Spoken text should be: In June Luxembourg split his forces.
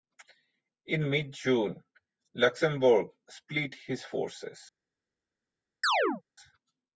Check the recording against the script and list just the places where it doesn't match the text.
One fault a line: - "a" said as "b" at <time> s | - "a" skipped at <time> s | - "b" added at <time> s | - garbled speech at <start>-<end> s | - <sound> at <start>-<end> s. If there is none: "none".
- "mid" added at 1.1 s
- chirp at 5.8-6.2 s